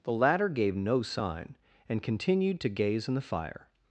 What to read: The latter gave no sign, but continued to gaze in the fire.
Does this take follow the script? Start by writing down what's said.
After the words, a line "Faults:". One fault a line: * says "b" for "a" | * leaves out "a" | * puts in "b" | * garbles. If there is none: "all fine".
The latter gave no sign, and continued to gaze in the fire.
Faults:
* says "and" for "but"